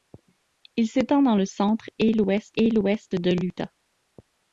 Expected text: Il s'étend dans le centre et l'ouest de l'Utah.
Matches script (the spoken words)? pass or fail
fail